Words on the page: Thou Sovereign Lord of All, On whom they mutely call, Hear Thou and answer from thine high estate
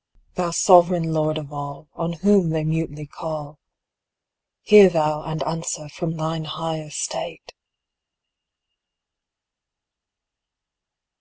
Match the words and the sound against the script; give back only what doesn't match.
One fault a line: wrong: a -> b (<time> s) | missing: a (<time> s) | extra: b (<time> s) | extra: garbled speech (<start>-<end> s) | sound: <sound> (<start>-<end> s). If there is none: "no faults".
no faults